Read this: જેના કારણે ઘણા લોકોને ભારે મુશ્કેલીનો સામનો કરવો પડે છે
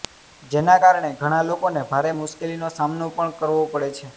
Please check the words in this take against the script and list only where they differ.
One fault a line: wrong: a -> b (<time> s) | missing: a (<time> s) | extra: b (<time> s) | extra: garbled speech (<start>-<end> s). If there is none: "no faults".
extra: પણ (3.1 s)